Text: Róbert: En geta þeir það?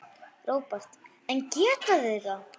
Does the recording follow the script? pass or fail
pass